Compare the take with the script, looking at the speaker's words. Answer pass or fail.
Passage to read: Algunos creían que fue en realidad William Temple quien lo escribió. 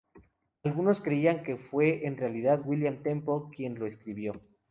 pass